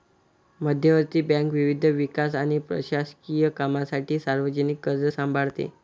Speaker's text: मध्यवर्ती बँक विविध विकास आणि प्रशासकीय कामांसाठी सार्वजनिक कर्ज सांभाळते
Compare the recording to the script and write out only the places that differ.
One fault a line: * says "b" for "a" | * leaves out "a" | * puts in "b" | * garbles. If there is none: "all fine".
all fine